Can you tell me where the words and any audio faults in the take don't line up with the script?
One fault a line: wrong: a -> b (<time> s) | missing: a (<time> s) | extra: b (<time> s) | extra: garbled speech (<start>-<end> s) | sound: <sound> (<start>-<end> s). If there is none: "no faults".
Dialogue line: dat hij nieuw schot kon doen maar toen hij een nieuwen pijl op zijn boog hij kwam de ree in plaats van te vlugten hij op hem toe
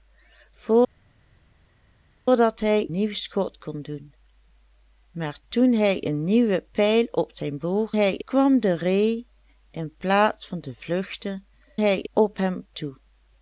no faults